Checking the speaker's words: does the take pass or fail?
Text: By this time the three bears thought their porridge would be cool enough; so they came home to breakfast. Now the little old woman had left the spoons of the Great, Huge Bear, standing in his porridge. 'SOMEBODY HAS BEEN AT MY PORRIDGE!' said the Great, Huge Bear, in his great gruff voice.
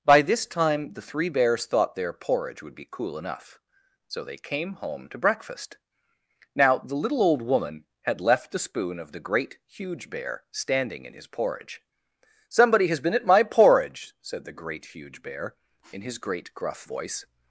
fail